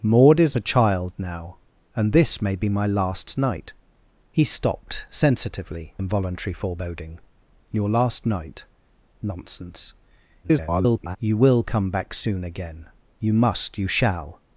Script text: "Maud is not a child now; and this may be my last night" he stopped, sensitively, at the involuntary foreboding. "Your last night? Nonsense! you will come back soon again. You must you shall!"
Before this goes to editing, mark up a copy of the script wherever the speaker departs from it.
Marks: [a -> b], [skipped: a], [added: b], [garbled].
"Maud is [skipped: not] a child now; and this may be my last night" he stopped, sensitively, [skipped: at the] involuntary foreboding. "Your last night? Nonsense! [garbled] you will come back soon again. You must you shall!"